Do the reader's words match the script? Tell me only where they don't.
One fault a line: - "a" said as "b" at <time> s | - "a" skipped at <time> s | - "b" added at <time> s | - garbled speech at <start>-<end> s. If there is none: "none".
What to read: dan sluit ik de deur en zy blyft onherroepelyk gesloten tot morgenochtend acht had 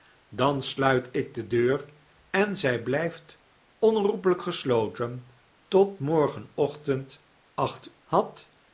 none